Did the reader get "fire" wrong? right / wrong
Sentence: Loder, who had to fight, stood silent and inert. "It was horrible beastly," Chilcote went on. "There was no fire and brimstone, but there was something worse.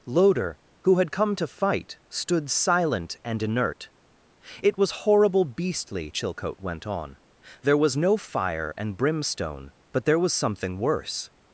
right